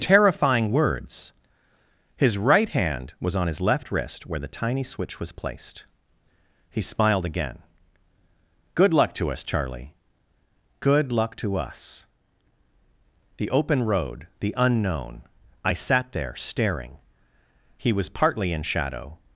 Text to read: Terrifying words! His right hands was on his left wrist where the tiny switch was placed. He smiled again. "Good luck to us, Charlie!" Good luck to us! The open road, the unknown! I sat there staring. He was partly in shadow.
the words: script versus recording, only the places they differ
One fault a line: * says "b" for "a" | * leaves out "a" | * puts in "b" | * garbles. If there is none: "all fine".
* says "hand" for "hands"